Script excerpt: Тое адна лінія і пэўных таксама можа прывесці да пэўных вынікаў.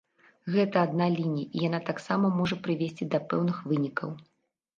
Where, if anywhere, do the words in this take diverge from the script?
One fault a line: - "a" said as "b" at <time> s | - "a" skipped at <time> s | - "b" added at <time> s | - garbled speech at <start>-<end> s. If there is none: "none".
- "Тое" said as "Гэта" at 0.5 s
- "пэўных" said as "яна" at 1.7 s